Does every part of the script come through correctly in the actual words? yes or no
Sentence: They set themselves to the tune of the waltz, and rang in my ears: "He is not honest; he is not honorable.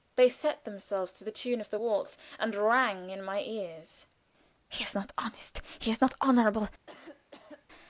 yes